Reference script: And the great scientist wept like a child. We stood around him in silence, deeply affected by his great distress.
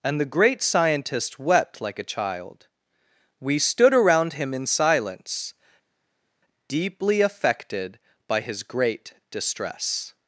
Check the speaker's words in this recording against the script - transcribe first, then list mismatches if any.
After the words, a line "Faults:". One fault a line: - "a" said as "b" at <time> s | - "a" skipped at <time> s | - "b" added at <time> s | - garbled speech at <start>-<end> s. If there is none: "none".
And the great scientist wept like a child. We stood around him in silence, deeply affected by his great distress.
Faults:
none